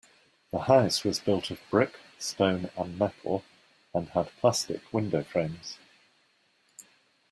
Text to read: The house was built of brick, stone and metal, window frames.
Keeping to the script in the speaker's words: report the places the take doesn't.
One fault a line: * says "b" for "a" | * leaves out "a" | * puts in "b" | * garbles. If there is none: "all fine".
* puts in "and had plastic"